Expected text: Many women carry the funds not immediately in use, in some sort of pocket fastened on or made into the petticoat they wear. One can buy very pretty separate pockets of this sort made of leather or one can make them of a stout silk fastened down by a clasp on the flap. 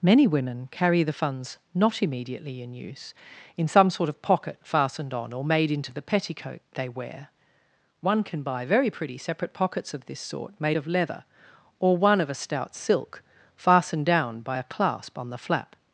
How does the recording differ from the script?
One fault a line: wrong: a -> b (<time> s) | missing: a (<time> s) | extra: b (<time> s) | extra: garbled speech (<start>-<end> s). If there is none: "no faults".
missing: can make them (12.2 s)